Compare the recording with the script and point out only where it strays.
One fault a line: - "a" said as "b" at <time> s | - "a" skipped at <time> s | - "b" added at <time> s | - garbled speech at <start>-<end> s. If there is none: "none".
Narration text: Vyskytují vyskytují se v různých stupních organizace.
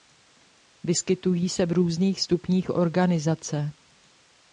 - "vyskytují" skipped at 1.5 s